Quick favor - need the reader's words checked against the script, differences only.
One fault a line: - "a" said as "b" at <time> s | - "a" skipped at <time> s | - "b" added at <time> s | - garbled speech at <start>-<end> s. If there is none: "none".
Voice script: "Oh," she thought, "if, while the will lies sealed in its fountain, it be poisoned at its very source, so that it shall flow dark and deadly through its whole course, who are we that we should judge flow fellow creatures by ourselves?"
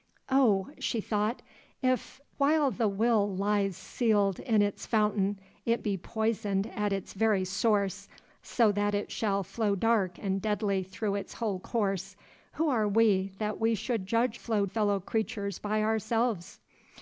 none